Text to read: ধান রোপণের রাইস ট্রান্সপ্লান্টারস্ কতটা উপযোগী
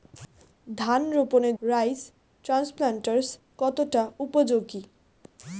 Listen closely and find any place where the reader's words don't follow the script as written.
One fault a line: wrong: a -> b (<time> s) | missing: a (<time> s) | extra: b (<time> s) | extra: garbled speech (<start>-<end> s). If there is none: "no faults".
no faults